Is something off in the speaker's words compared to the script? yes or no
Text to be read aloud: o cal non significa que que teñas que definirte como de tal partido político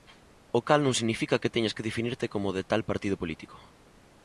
yes